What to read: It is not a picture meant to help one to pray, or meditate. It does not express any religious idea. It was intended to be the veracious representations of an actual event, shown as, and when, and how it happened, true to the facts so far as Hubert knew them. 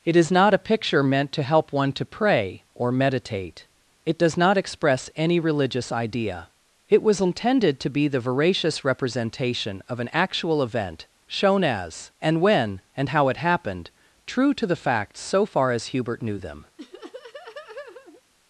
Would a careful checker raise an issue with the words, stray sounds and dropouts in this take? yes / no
yes